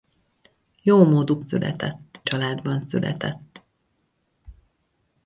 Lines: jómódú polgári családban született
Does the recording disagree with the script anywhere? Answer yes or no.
yes